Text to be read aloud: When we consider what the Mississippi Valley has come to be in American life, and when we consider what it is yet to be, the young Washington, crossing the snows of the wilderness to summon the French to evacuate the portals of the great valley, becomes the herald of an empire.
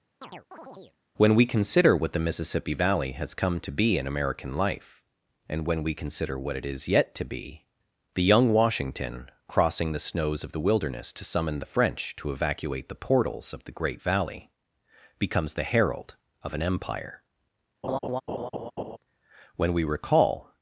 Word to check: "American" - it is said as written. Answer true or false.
true